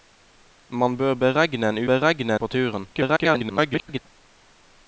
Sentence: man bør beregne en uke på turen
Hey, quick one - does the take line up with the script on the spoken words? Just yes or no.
no